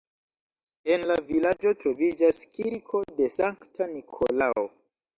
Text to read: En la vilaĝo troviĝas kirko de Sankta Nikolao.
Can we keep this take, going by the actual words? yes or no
yes